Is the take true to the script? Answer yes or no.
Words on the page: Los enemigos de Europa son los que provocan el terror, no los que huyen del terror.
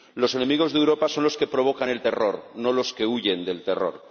yes